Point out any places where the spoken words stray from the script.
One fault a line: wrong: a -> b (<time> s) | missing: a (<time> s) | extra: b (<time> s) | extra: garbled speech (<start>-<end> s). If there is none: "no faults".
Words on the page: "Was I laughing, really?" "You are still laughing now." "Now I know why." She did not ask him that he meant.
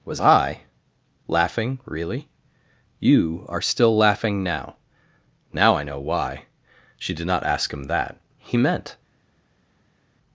no faults